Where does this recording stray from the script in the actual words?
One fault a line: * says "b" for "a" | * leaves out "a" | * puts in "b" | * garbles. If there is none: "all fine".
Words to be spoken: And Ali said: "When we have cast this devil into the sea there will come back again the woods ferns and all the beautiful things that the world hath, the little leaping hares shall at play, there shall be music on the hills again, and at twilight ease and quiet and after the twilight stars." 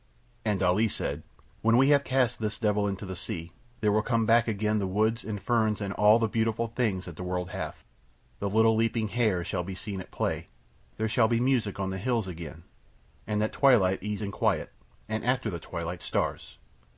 * puts in "and"
* puts in "be seen"